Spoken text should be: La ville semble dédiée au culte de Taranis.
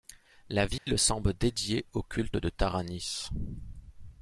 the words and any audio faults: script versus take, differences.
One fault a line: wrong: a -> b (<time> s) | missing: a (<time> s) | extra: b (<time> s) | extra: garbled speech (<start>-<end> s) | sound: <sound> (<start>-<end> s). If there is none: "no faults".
sound: dropout (0.8-0.9 s)